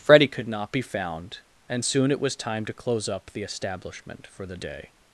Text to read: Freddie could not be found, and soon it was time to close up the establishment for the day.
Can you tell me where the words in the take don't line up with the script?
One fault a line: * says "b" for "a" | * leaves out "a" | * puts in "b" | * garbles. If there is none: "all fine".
all fine